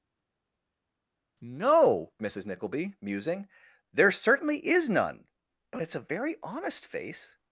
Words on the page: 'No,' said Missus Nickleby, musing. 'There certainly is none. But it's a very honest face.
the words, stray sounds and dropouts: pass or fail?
fail